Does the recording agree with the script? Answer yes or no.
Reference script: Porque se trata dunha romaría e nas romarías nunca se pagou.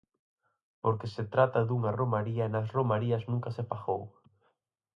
yes